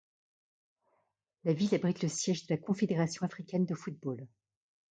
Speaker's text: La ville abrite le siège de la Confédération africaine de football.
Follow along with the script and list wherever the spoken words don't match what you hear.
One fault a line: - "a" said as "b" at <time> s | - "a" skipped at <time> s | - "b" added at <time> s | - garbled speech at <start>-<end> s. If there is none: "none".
none